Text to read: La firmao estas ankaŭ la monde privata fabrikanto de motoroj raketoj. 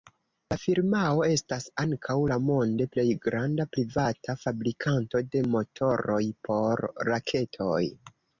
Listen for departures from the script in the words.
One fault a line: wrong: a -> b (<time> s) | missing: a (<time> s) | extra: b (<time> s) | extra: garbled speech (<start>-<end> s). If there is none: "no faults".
extra: plej granda (2.9 s)
extra: por (6.5 s)